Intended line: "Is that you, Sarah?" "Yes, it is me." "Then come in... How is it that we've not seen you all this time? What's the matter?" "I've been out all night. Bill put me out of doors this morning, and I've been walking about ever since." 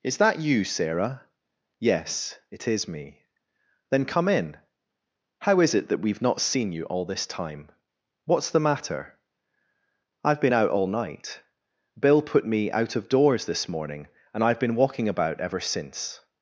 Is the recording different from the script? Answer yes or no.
no